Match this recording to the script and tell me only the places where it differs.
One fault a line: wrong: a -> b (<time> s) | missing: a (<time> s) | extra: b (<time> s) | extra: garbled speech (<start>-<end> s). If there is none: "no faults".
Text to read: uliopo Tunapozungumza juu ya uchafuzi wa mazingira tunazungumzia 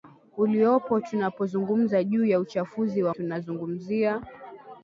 missing: mazingira (3.1 s)